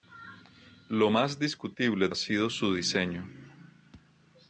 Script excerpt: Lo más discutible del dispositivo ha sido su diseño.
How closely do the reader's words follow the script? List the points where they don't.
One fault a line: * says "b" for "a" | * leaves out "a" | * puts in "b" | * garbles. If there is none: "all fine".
* leaves out "del dispositivo"